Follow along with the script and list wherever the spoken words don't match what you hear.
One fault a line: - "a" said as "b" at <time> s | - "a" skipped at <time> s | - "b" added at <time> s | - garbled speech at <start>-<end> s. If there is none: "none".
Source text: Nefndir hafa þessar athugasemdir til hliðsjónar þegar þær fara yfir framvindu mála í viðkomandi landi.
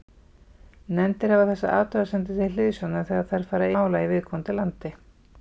- "yfir framvindu" skipped at 3.7 s